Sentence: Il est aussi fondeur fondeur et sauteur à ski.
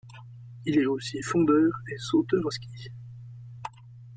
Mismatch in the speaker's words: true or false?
true